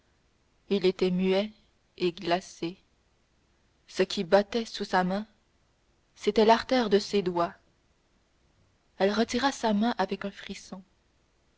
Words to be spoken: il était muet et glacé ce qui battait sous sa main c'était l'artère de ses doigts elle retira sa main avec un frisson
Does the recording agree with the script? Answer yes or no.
yes